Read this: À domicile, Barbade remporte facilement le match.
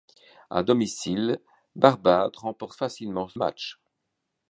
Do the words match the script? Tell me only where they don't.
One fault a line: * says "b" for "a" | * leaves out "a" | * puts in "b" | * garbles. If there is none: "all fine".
* leaves out "le"